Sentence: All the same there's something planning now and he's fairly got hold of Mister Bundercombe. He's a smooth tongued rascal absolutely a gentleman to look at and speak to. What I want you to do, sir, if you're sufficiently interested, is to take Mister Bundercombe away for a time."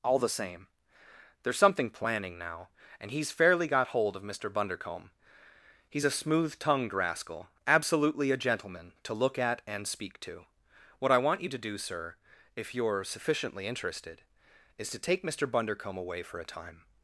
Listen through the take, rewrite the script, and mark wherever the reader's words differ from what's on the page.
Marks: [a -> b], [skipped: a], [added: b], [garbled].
All the same there's something planning now and he's fairly got hold of Mister Bundercombe. He's a smooth tongued rascal absolutely a gentleman to look at and speak to. What I want you to do, sir, if you're sufficiently interested, is to take Mister Bundercombe away for a time."